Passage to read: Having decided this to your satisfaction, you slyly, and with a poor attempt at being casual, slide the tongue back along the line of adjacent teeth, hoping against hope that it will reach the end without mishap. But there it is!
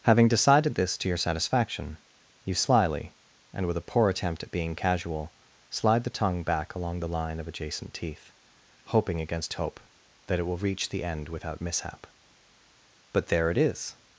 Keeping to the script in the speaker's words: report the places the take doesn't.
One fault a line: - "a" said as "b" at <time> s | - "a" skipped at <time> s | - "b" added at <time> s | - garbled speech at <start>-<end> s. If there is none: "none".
none